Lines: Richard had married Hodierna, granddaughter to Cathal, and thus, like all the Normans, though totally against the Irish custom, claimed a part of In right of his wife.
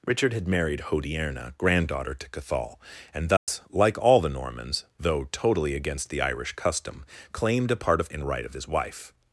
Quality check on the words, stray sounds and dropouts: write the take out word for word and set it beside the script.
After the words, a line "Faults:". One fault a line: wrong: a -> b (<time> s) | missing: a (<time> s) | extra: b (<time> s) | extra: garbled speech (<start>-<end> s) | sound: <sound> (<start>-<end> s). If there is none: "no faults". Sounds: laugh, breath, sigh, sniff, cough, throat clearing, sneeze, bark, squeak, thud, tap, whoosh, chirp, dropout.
Richard had married Hodierna, granddaughter to Cathal, and thus, like all the Normans, though totally against the Irish custom, claimed a part of In right of his wife.
Faults:
sound: dropout (3.4-3.5 s)